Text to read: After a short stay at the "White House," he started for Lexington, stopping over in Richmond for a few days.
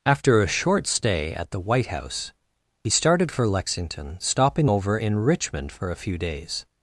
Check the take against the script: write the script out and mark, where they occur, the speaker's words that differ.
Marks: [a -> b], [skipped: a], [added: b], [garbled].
After a short stay at the "White House," he started for Lexington, stopping over in Richmond for a few days.